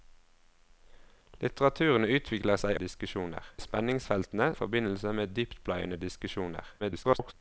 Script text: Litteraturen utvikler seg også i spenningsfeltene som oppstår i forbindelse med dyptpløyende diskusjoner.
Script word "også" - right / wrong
wrong